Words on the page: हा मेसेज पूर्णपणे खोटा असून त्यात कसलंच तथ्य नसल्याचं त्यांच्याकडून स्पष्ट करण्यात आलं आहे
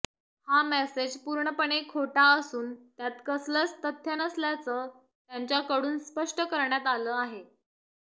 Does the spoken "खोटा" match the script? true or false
true